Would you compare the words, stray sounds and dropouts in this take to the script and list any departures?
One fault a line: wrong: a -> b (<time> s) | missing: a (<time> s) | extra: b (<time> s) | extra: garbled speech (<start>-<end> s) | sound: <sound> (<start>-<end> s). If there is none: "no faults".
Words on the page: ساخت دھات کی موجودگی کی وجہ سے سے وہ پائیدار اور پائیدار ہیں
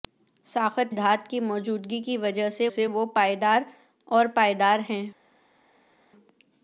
no faults